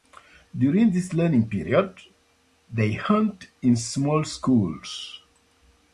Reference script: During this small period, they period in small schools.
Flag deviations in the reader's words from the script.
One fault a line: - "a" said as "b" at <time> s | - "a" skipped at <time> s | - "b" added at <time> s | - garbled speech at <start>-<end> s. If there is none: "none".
- "small" said as "learning" at 1.1 s
- "period" said as "hunt" at 2.9 s